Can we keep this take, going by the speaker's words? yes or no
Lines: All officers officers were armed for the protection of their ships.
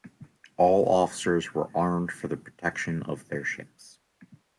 no